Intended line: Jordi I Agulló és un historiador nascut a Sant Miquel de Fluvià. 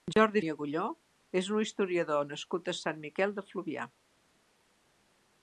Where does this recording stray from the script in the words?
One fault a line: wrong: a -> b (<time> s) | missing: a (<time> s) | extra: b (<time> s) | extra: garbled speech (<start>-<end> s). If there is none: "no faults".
no faults